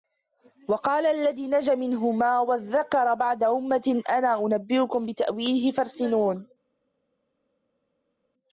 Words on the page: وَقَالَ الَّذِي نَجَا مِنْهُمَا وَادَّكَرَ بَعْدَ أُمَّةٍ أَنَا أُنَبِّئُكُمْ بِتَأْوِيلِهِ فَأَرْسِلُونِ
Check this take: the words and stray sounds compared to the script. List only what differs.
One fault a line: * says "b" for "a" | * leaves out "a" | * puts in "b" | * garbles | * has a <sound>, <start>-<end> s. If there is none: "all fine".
all fine